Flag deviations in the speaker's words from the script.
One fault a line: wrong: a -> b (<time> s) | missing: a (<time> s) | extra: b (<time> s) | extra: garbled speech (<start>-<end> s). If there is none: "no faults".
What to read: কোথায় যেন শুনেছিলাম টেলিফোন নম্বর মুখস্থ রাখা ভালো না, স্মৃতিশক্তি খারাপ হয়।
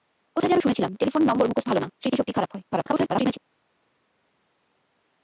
missing: রাখা (1.7 s)
extra: garbled speech (2.7-3.4 s)